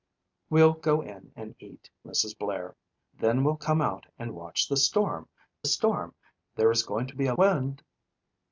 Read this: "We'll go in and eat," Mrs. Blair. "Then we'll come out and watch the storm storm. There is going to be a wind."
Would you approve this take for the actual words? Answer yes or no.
yes